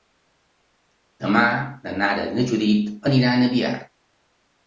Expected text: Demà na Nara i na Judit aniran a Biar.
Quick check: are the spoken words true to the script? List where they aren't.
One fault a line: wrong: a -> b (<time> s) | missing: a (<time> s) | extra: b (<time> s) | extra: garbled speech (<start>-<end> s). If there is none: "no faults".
no faults